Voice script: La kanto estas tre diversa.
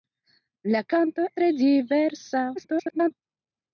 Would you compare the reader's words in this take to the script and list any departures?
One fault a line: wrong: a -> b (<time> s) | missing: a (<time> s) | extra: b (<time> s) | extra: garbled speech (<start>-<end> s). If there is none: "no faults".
missing: estas (1.3 s)
extra: garbled speech (2.6-3.1 s)